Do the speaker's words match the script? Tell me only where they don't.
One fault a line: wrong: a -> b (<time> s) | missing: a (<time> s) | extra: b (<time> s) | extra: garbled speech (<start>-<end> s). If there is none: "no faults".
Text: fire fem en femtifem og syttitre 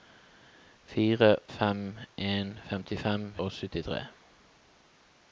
no faults